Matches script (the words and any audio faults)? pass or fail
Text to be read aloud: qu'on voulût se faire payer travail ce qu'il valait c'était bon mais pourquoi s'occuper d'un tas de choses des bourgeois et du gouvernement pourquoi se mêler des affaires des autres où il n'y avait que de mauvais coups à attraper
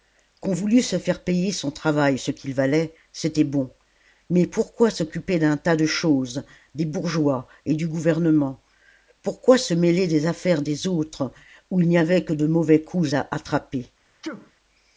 fail